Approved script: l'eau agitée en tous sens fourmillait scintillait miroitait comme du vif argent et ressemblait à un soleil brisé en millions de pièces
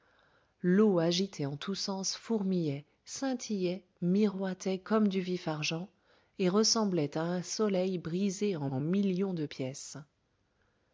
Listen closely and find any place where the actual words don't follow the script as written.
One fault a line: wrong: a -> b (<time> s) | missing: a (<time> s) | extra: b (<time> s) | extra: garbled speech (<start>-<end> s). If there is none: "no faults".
extra: en (8.7 s)